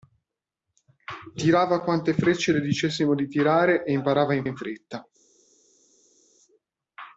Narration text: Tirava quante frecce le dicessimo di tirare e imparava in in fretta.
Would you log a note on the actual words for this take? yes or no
no